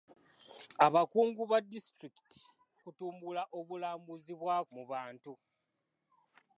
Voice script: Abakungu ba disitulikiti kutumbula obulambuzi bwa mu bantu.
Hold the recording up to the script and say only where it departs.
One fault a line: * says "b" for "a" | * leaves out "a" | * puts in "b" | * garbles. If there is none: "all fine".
all fine